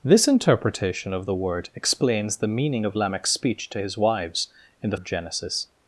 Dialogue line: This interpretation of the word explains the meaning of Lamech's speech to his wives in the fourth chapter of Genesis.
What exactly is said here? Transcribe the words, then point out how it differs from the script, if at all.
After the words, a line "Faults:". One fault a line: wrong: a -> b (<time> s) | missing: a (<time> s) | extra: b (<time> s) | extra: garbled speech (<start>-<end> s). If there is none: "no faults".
This interpretation of the word explains the meaning of Lamech's speech to his wives in the of Genesis.
Faults:
missing: fourth chapter (5.0 s)